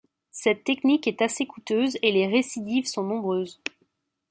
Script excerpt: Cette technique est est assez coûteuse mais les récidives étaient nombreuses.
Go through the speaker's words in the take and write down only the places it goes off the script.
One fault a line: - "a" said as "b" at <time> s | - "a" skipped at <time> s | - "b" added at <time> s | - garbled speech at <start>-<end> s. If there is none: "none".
- "est" skipped at 1.2 s
- "mais" said as "et" at 2.0 s
- "étaient" said as "sont" at 2.9 s